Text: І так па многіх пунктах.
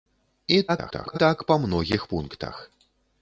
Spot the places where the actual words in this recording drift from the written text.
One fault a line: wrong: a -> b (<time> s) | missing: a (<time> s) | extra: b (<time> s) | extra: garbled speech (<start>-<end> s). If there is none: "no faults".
extra: garbled speech (0.7-1.2 s)